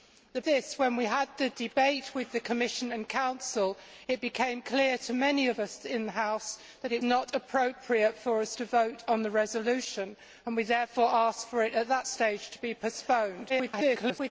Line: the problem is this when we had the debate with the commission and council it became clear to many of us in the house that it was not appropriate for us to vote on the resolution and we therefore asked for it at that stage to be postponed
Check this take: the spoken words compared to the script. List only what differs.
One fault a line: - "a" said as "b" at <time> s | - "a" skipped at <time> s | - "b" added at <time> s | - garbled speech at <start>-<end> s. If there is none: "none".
- "problem is" skipped at 0.4 s
- "was" skipped at 7.0 s
- garbled speech at 13.5-14.3 s